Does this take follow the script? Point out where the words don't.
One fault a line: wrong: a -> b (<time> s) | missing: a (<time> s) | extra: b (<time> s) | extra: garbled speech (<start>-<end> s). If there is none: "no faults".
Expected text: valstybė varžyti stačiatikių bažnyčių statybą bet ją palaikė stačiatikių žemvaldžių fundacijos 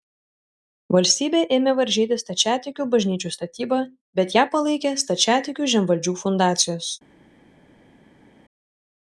extra: ėmė (1.6 s)